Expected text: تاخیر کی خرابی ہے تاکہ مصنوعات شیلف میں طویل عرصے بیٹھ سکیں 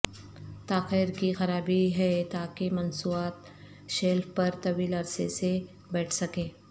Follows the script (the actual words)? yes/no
no